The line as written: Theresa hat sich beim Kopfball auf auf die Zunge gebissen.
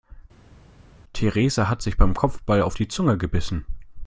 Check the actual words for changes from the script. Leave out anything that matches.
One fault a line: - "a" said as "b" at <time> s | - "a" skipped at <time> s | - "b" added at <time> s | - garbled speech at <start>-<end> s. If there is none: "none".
- "auf" skipped at 2.8 s